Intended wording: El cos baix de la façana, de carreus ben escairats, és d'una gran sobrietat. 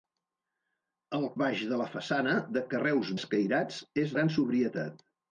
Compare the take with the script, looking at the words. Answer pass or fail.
fail